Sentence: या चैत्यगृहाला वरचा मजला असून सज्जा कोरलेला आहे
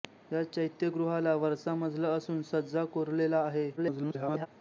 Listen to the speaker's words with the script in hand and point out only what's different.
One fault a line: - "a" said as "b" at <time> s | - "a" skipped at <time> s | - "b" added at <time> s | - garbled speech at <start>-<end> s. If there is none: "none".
- garbled speech at 3.8-4.5 s